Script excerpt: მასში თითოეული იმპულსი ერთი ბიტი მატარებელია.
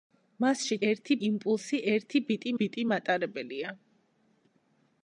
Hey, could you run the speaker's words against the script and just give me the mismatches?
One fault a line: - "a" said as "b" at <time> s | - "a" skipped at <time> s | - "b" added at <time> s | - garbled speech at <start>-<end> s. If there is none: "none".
- "თითოეული" said as "ერთი" at 0.9 s
- "ბიტი" added at 2.6 s